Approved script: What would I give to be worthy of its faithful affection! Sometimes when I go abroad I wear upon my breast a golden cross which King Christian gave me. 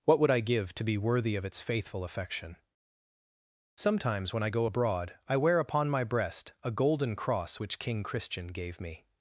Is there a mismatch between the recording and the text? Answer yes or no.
no